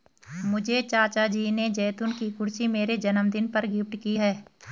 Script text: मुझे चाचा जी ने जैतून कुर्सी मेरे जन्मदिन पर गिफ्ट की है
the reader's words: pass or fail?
fail